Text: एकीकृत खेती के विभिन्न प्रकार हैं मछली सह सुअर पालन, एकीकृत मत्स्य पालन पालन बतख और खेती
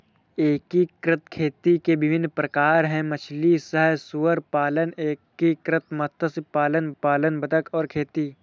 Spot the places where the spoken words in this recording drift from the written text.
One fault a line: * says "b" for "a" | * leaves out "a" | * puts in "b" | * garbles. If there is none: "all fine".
all fine